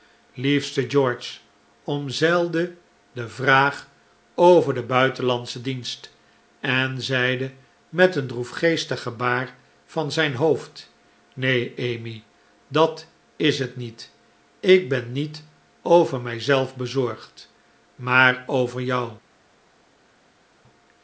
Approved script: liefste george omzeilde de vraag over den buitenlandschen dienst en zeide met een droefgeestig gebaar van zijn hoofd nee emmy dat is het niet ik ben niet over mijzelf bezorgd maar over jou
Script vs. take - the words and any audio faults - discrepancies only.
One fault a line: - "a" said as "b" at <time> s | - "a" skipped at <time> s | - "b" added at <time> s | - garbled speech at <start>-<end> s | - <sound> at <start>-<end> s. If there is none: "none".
none